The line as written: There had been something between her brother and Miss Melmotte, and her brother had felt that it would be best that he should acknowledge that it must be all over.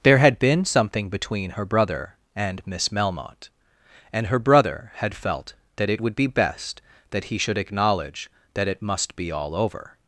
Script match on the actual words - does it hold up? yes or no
yes